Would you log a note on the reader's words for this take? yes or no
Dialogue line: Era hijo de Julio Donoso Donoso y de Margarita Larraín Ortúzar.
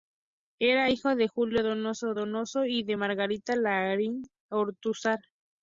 no